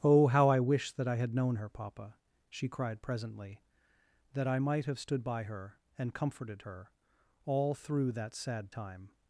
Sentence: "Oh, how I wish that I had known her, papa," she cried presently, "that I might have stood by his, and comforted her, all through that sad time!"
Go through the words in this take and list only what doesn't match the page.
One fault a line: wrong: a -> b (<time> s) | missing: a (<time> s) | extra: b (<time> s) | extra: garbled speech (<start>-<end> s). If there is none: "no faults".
wrong: his -> her (5.4 s)